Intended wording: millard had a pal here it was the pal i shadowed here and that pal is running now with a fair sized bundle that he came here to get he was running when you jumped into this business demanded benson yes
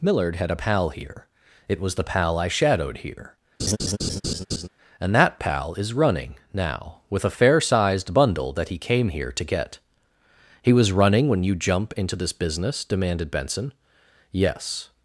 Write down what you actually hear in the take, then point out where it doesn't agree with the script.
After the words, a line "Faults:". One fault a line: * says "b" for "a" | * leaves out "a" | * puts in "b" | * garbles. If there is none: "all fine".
millard had a pal here it was the pal i shadowed here and that pal is running now with a fair sized bundle that he came here to get he was running when you jump into this business demanded benson yes
Faults:
* says "jump" for "jumped"